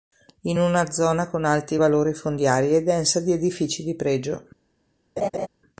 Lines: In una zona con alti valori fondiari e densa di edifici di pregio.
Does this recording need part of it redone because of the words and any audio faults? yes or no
yes